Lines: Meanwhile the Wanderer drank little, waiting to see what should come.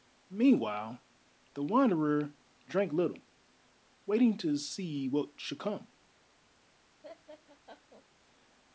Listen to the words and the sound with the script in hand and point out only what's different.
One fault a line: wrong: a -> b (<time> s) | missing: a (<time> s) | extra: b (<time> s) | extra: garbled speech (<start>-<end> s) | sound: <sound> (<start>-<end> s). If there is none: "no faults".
sound: laugh (7.0-8.1 s)